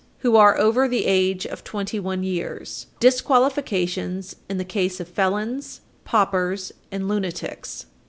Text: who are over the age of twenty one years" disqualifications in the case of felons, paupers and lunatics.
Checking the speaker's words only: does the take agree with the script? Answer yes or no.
yes